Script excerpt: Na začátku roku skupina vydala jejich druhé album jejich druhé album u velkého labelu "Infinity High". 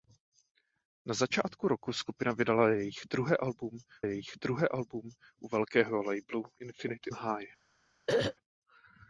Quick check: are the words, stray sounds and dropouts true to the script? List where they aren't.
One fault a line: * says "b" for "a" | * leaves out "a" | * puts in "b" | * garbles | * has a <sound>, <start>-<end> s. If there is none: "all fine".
* has a throat clearing, 8.1-8.4 s